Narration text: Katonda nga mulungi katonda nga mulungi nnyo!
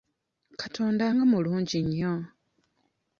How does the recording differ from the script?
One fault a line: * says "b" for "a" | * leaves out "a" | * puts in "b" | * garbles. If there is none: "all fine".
* leaves out "katonda nga mulungi"